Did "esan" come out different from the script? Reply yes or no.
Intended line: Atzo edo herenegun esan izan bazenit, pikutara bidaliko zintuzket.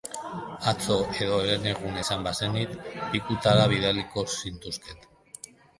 yes